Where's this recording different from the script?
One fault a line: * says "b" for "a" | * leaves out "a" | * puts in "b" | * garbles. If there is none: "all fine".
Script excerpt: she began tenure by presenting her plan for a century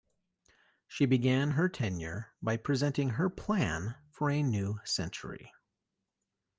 * puts in "her"
* puts in "new"